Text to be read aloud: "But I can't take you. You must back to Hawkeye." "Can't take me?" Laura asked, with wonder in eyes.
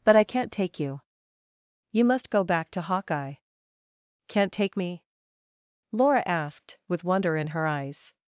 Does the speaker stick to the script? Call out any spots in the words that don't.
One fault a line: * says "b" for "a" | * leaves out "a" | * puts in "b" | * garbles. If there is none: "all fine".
* puts in "go"
* puts in "her"